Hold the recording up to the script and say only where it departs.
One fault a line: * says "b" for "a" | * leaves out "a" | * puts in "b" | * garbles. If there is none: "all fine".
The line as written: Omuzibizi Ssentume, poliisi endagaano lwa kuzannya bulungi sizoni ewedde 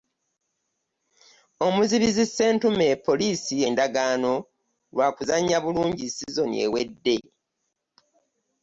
all fine